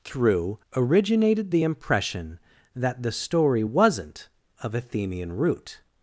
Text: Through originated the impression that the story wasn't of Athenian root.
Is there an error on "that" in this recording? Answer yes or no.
no